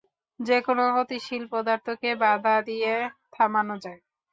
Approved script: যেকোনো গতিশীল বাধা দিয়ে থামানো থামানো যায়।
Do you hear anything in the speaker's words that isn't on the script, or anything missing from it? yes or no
yes